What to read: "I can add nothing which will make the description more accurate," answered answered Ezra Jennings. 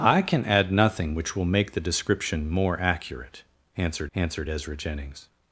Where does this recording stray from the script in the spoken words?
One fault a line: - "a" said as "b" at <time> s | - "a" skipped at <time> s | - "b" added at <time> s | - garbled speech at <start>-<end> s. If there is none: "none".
none